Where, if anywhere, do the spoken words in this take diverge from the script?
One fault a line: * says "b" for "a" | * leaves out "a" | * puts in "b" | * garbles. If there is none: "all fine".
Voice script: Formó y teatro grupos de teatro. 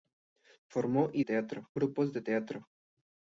all fine